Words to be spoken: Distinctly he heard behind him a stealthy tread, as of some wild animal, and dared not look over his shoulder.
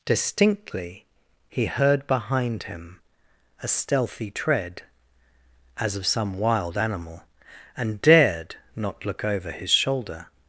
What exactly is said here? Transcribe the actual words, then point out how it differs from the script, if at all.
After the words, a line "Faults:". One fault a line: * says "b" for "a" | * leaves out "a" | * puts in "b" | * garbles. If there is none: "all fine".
Distinctly he heard behind him a stealthy tread, as of some wild animal, and dared not look over his shoulder.
Faults:
all fine